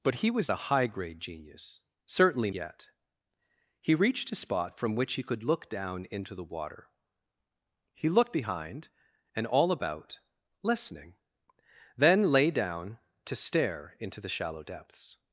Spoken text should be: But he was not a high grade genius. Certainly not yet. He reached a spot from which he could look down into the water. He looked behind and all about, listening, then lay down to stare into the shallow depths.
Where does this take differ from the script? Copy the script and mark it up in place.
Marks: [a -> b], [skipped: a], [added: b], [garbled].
But he was [skipped: not] a high grade genius. Certainly [skipped: not] yet. He reached a spot from which he could look down into the water. He looked behind and all about, listening, then lay down to stare into the shallow depths.